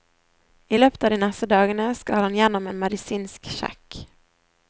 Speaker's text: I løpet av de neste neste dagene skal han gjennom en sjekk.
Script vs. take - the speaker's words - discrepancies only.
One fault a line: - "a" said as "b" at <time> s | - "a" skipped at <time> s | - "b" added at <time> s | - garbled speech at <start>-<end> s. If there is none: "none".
- "neste" skipped at 1.5 s
- "medisinsk" added at 2.8 s